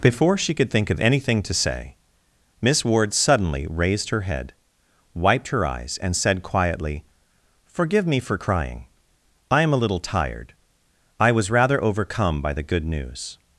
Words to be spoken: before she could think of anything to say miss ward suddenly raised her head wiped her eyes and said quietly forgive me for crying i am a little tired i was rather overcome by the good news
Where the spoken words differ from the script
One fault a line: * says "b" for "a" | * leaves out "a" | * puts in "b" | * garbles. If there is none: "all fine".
all fine